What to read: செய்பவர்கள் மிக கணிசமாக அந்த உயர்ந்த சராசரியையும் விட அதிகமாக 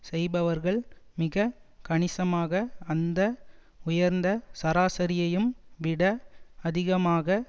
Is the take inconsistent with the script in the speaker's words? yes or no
no